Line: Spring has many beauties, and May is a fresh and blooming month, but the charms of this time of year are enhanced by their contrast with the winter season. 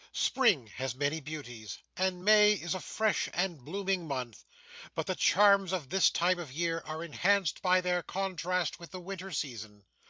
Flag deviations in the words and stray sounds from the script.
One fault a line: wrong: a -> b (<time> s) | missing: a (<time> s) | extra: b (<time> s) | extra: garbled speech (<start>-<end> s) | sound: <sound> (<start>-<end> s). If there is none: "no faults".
no faults